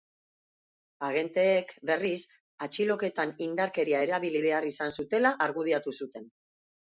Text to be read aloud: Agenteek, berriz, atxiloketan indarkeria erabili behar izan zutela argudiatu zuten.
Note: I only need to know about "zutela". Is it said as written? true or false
true